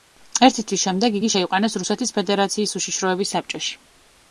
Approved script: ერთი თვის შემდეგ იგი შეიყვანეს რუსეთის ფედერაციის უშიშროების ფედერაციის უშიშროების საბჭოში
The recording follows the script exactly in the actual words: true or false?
false